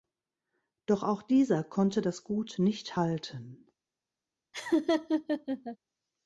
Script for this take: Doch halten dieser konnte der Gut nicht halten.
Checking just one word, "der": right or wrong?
wrong